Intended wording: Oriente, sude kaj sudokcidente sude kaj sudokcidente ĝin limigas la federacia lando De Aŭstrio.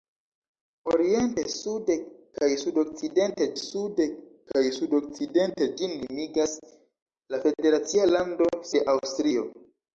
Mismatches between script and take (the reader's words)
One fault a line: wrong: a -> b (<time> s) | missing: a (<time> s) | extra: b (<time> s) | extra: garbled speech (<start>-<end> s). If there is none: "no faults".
no faults